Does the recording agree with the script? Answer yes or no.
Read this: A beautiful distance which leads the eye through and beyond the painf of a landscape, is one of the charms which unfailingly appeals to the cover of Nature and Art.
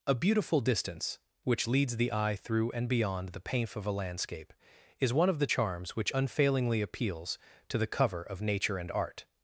yes